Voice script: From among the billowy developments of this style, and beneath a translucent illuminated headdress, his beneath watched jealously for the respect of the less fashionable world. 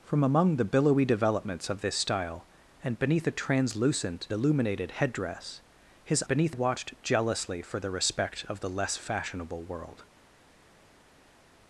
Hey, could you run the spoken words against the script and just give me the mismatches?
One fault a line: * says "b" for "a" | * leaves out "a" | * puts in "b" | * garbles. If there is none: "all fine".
all fine